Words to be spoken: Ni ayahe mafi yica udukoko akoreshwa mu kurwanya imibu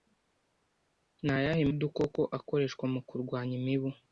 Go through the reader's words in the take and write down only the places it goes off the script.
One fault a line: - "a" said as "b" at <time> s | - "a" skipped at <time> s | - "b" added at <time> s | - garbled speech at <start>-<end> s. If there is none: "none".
- "mafi yica" skipped at 1.6 s